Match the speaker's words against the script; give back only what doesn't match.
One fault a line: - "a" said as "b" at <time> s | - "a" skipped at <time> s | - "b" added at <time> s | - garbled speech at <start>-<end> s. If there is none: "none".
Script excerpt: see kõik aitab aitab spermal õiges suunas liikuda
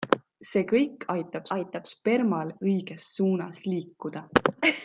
none